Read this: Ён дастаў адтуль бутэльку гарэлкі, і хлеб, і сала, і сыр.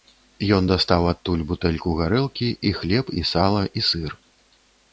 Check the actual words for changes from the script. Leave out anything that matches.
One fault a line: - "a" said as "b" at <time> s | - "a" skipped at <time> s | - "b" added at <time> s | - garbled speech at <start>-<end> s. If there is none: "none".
none